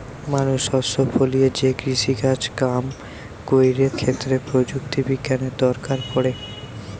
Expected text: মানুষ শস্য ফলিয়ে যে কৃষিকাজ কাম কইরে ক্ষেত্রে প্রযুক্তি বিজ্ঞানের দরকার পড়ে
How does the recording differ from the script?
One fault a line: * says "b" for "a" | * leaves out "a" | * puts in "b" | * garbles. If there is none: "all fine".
all fine